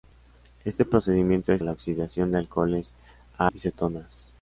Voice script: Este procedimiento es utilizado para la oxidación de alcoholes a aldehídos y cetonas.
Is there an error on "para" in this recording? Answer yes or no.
yes